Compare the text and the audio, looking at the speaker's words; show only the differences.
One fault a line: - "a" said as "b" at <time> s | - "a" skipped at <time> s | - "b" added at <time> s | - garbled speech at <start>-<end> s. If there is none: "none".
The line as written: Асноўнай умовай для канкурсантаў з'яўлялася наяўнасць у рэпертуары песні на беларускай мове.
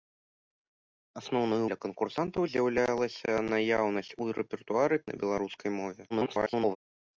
- "умовай" skipped at 1.6 s
- "песні" skipped at 5.0 s
- garbled speech at 6.1-6.8 s